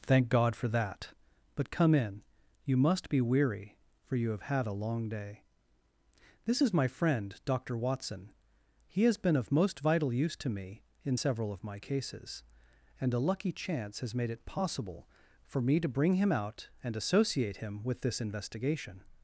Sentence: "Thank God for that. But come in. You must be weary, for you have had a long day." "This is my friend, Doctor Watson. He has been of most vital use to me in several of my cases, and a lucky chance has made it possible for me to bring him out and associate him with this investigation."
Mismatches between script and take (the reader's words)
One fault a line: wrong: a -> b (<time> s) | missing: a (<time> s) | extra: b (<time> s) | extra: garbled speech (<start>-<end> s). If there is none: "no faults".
no faults